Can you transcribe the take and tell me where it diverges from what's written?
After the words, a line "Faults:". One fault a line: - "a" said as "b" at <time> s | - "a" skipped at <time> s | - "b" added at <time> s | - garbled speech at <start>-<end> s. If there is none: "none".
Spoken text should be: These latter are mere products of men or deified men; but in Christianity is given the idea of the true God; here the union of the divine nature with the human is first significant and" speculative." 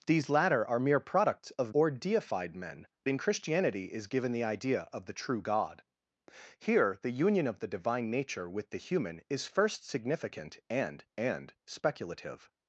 These latter are mere products of or deified men; in Christianity is given the idea of the true God; here the union of the divine nature with the human is first significant and and" speculative."
Faults:
- "men" skipped at 1.8 s
- "but" skipped at 2.9 s
- "and" added at 11.2 s